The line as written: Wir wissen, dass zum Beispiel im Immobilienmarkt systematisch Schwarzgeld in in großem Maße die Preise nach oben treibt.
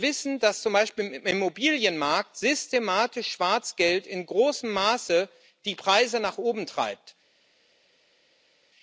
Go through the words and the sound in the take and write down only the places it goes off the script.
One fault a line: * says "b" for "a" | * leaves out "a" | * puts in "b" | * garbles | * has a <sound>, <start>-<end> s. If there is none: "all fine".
* leaves out "in"